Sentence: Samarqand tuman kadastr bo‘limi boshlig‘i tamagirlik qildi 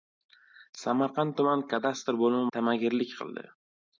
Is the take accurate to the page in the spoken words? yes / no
no